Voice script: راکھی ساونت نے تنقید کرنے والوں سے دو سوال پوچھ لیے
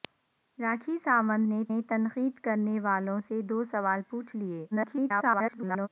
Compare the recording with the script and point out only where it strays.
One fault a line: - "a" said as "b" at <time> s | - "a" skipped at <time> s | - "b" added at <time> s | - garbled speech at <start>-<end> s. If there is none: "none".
- "نے" added at 1.7 s
- garbled speech at 4.7-5.9 s